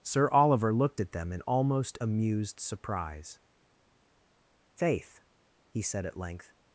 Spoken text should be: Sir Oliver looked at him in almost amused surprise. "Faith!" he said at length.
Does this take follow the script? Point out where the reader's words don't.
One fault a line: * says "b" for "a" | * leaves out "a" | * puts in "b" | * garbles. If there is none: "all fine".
* says "them" for "him"